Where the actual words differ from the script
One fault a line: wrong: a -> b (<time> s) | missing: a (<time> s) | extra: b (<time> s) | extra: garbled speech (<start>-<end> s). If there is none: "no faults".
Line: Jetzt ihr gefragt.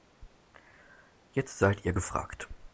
extra: seid (1.6 s)